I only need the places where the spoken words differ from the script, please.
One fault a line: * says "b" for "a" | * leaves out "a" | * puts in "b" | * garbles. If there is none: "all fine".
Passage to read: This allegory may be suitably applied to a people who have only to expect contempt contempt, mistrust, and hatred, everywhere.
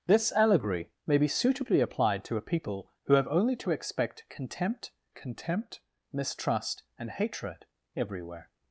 all fine